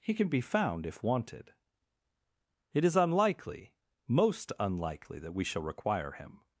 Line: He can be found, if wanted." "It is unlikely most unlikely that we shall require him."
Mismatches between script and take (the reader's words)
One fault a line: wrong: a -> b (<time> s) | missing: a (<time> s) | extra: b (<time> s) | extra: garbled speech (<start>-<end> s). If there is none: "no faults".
no faults